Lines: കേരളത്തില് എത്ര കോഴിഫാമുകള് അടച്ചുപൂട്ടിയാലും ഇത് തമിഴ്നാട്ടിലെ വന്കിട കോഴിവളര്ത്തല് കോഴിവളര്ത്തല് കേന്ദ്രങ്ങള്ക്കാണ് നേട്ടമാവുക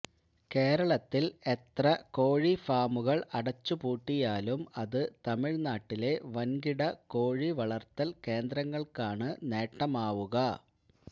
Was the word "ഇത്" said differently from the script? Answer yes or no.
yes